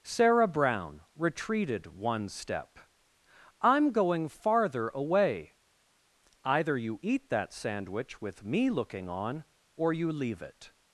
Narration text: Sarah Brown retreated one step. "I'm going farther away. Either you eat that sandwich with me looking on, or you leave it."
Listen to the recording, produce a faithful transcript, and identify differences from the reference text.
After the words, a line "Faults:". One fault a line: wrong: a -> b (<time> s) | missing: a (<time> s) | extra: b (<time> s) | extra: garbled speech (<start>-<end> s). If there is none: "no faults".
Sarah Brown retreated one step. "I'm going farther away. Either you eat that sandwich with me looking on, or you leave it."
Faults:
no faults